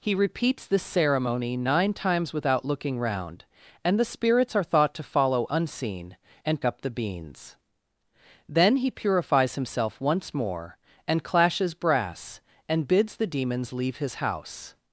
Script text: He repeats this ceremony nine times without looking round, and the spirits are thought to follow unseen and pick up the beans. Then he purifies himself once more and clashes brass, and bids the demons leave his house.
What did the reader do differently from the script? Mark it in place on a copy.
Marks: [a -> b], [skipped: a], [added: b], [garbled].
He repeats this ceremony nine times without looking round, and the spirits are thought to follow unseen and [skipped: pick] up the beans. Then he purifies himself once more and clashes brass, and bids the demons leave his house.